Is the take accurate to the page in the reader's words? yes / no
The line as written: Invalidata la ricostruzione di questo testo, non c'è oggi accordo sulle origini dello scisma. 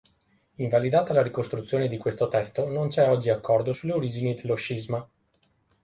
yes